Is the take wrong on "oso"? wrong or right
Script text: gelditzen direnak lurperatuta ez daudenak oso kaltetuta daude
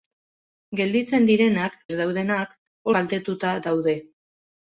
wrong